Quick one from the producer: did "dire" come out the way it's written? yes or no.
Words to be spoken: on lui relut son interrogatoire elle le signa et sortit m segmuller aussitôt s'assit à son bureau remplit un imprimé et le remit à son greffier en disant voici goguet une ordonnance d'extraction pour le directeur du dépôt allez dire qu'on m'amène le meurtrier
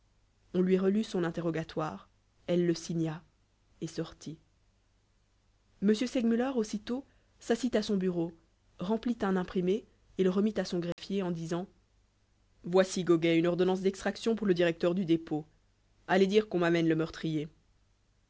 yes